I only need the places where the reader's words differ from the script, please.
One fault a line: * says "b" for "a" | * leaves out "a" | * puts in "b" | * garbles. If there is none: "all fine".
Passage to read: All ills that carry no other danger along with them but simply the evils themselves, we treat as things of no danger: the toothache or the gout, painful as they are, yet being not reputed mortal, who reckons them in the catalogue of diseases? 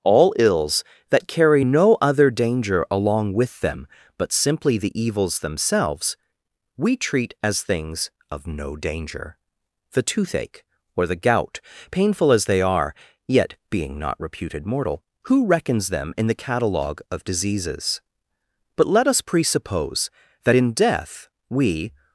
* puts in "But let us presuppose that in death we"